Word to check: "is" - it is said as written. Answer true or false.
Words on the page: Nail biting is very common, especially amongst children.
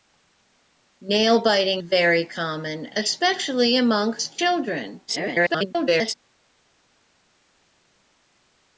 false